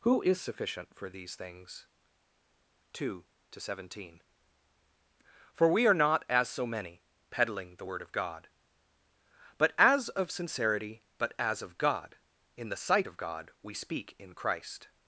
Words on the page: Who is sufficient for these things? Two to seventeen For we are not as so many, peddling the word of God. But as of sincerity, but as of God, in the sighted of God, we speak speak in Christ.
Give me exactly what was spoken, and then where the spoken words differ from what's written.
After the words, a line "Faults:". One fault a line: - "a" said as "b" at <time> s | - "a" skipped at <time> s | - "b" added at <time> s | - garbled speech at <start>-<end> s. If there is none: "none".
Who is sufficient for these things? Two to seventeen For we are not as so many, peddling the word of God. But as of sincerity, but as of God, in the sight of God, we speak in Christ.
Faults:
- "sighted" said as "sight" at 12.8 s
- "speak" skipped at 14.2 s